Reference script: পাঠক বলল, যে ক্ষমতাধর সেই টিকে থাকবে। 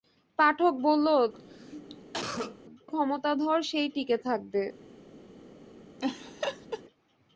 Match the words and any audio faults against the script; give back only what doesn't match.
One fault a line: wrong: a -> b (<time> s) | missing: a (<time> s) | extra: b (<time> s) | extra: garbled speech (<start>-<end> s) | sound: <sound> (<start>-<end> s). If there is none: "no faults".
missing: যে (1.1 s)
sound: cough (1.3-2.6 s)
sound: laugh (6.0-6.8 s)